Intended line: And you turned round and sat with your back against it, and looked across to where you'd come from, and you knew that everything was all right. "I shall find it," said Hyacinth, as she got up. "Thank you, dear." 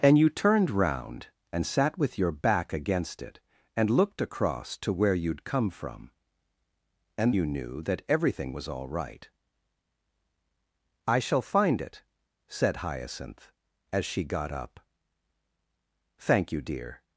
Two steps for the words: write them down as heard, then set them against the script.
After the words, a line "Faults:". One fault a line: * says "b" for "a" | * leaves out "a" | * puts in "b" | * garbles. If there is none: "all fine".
And you turned round and sat with your back against it, and looked across to where you'd come from, and you knew that everything was all right. "I shall find it," said Hyacinth, as she got up. "Thank you, dear."
Faults:
all fine